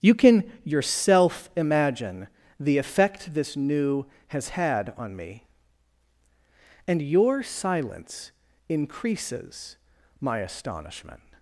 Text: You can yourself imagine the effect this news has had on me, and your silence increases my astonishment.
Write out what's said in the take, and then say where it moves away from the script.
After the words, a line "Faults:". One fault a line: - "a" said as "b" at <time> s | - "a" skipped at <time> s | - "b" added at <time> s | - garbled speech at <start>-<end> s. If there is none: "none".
You can yourself imagine the effect this new has had on me, and your silence increases my astonishment.
Faults:
- "news" said as "new" at 3.6 s